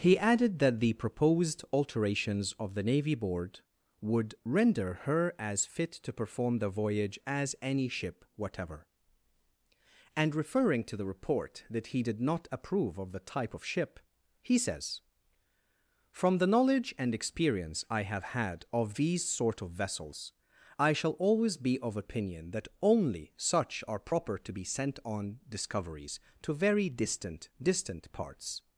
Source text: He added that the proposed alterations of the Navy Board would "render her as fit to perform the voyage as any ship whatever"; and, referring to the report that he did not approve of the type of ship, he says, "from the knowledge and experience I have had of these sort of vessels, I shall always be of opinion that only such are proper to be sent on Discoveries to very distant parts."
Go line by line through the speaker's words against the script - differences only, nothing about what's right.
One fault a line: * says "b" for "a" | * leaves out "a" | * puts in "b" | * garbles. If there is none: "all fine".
* puts in "distant"